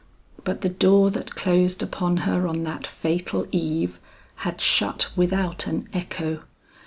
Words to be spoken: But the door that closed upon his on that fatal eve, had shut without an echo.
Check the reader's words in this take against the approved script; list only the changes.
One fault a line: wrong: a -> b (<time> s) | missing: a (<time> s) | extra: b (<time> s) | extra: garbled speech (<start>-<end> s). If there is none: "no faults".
wrong: his -> her (2.2 s)